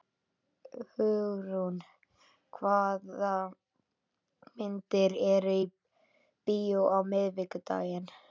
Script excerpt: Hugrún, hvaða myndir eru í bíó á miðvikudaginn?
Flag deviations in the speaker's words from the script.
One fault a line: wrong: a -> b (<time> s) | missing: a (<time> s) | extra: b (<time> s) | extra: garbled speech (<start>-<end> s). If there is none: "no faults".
no faults